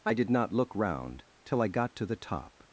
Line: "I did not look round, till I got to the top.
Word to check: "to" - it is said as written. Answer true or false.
true